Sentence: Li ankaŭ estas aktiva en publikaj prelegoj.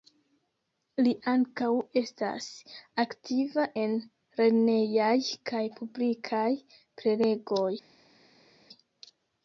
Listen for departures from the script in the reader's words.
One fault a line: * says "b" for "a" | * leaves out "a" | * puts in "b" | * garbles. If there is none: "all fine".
* puts in "lernejaj kaj"